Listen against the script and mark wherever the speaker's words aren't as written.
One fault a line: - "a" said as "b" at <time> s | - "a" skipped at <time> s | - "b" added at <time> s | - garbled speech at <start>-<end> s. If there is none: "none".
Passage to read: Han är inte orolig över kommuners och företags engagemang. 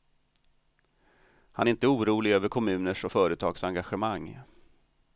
none